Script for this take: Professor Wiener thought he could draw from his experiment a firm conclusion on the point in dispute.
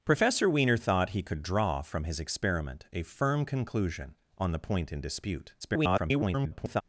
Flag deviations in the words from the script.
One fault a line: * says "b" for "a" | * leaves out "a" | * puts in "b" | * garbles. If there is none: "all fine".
* garbles